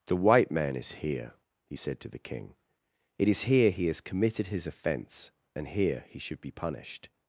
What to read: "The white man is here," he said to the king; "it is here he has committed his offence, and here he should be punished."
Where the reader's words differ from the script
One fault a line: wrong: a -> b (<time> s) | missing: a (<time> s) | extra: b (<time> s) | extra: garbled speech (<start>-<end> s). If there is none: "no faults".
no faults